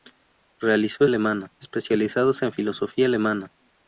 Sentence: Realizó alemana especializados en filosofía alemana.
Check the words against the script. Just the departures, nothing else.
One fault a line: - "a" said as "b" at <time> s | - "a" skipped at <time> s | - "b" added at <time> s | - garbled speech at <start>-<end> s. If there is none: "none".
none